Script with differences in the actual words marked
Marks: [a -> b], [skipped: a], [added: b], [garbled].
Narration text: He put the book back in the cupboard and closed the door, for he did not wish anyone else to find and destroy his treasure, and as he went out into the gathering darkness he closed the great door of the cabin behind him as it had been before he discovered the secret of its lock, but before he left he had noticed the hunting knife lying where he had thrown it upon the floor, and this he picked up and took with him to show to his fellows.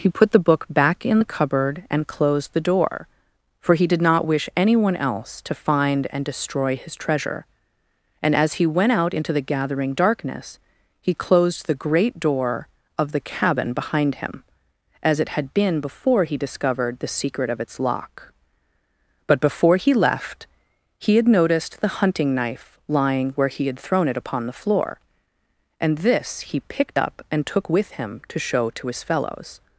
He put the book back in the cupboard and closed the door, for he did not wish anyone else to find and destroy his treasure, and as he went out into the gathering darkness he closed the great door of the cabin behind him as it had been before he discovered the secret of its lock, but before he left he had noticed the hunting knife lying where he had thrown it upon the floor, and this he picked up and took with him to show to his fellows.